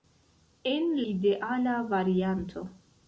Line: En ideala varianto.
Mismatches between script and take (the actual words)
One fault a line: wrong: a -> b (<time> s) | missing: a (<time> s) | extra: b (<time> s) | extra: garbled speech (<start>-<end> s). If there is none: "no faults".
no faults